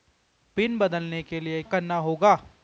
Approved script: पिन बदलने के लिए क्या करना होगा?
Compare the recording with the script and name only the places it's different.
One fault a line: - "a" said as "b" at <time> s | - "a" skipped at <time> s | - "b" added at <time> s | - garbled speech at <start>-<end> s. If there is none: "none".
- "क्या" skipped at 1.6 s